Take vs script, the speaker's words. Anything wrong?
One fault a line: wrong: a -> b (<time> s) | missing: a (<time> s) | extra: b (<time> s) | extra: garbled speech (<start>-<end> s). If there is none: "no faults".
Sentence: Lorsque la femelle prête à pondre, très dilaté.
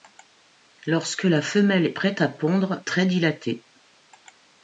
no faults